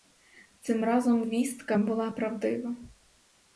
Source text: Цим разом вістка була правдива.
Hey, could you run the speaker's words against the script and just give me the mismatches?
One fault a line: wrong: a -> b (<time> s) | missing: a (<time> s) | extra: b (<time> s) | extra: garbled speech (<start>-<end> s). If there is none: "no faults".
no faults